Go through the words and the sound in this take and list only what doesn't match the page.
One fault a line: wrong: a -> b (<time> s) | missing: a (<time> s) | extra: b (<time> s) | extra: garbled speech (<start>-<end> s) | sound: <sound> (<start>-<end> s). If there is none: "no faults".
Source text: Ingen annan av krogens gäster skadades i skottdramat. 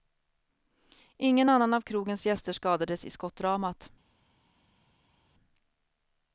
no faults